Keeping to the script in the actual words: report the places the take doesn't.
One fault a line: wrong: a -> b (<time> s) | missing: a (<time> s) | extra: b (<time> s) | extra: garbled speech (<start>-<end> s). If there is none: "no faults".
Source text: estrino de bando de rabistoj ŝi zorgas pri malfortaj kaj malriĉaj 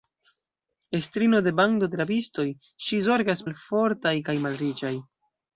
missing: pri (3.5 s)